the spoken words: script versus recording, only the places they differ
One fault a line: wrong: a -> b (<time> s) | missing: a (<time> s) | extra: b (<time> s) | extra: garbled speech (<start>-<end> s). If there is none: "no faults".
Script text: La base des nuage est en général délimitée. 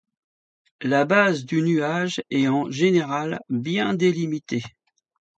wrong: des -> du (1.4 s)
extra: bien (3.5 s)